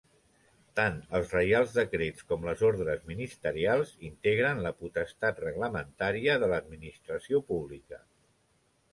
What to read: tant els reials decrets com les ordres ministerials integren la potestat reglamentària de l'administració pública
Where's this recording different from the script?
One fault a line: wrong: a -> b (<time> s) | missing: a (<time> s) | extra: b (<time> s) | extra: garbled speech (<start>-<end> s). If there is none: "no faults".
no faults